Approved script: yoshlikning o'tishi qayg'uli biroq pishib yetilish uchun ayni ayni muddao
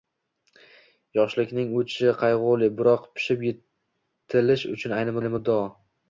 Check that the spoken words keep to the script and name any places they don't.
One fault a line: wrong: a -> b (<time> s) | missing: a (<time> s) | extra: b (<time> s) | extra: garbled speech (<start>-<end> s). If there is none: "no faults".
no faults